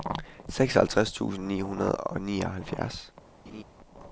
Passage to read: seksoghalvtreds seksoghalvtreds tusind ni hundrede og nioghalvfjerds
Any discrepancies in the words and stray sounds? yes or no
yes